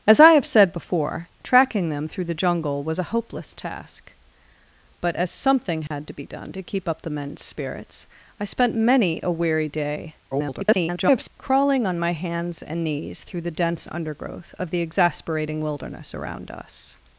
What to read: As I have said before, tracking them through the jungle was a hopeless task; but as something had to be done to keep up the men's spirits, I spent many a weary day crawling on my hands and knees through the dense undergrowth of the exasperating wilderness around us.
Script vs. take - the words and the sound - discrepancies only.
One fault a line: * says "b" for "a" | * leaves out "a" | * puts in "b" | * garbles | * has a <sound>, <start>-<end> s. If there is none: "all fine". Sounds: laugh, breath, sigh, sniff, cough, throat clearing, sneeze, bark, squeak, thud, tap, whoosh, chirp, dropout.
* has a dropout, 5.9-5.9 s
* garbles